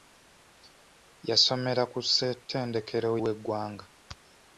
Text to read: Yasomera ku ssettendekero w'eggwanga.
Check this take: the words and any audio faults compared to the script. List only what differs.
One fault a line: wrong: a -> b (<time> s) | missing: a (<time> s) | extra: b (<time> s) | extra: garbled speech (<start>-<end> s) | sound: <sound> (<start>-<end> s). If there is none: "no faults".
no faults